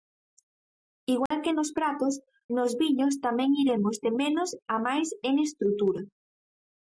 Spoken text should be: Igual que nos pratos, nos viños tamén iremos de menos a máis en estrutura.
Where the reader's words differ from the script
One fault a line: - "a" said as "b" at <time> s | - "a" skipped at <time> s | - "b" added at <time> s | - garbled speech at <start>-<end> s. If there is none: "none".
none